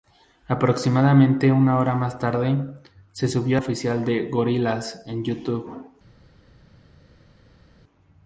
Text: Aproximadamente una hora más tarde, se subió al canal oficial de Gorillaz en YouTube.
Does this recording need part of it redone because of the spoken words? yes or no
yes